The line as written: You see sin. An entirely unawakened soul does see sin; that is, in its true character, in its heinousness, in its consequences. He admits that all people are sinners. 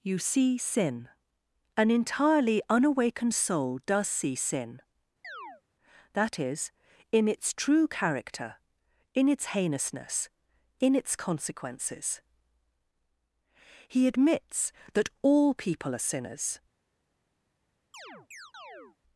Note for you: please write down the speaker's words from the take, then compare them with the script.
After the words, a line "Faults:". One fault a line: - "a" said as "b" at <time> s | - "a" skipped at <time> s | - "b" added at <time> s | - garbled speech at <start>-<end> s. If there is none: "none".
You see sin. An entirely unawakened soul does see sin; that is, in its true character, in its heinousness, in its consequences. He admits that all people are sinners.
Faults:
none